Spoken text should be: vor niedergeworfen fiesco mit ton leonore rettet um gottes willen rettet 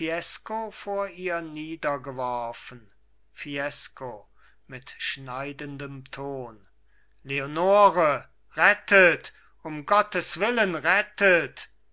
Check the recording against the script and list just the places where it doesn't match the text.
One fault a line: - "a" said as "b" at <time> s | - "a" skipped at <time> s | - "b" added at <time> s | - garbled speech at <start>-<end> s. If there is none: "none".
- "ihr" added at 1.1 s
- "schneidendem" added at 5.0 s